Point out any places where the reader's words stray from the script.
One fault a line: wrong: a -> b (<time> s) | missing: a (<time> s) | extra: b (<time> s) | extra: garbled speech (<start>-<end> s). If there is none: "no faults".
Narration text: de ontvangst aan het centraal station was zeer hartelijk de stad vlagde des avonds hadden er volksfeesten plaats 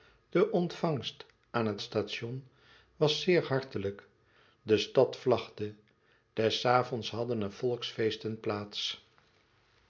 missing: centraal (1.8 s)